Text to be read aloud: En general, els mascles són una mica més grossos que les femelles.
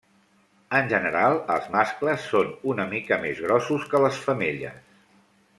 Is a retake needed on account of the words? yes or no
no